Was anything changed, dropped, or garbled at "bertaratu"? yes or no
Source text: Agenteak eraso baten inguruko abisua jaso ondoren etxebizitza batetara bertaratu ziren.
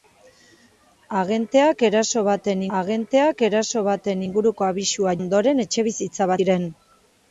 yes